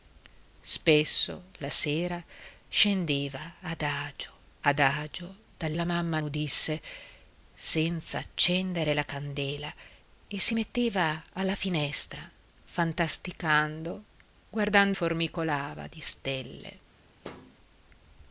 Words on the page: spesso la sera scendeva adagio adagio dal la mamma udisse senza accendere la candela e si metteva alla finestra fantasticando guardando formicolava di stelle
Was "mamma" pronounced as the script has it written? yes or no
yes